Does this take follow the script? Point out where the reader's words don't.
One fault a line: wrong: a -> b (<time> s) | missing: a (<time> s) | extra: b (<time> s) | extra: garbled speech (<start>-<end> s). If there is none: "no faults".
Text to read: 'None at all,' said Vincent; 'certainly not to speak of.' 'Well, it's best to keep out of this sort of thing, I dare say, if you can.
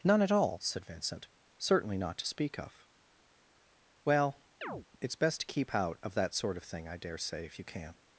wrong: this -> that (6.1 s)